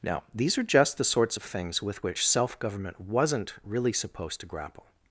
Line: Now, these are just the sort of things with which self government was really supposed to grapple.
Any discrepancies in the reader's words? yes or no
yes